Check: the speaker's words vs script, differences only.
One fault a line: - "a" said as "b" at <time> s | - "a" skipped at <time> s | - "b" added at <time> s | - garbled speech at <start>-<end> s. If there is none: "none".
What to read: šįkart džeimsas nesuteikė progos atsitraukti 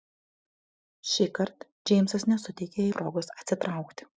none